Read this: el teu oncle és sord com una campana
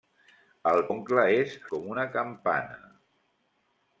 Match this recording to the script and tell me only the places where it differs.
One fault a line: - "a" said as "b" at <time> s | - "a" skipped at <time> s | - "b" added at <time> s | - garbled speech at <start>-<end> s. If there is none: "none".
- "teu" skipped at 0.8 s
- "sord" skipped at 1.6 s